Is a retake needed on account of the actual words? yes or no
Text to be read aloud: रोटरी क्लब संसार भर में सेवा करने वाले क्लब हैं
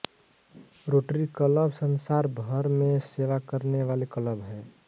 no